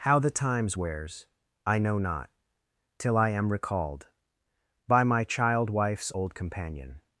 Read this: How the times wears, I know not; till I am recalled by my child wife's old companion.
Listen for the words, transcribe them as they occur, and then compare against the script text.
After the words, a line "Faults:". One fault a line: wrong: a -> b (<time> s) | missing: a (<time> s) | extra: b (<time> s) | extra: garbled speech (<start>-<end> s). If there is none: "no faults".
How the times wears, I know not; till I am recalled by my child wife's old companion.
Faults:
no faults